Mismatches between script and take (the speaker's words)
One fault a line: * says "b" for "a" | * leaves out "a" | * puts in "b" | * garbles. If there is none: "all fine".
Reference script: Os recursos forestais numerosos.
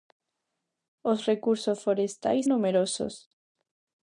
all fine